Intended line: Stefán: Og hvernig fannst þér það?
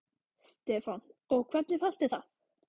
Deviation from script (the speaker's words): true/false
false